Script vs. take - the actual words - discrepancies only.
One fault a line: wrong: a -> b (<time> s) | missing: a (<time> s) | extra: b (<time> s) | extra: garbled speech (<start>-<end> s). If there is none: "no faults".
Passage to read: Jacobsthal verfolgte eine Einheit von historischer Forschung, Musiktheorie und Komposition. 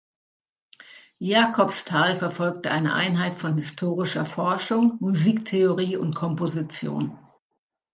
no faults